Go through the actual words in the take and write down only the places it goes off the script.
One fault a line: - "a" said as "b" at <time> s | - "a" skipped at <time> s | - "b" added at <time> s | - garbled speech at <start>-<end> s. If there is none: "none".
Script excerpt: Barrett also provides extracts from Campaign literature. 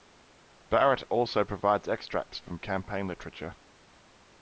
none